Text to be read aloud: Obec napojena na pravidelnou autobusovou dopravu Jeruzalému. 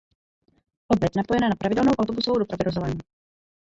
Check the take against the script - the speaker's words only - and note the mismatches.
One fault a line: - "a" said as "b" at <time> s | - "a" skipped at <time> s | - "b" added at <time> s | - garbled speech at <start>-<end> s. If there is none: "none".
none